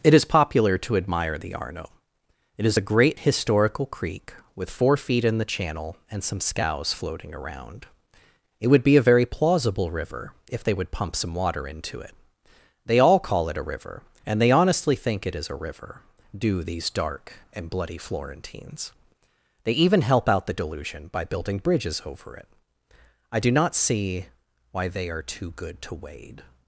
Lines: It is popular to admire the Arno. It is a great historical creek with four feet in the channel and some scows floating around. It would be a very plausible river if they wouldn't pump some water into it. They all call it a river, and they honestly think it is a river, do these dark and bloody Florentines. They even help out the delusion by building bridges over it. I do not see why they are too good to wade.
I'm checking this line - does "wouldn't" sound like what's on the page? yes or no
no